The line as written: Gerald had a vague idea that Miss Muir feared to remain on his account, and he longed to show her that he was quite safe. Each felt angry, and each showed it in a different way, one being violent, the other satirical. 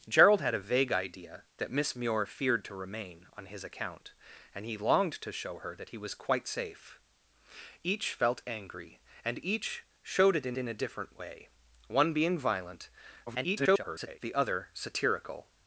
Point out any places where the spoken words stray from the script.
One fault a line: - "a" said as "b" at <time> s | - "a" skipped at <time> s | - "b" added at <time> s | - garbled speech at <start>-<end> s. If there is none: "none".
- "in" added at 10.6 s
- garbled speech at 13.3-14.2 s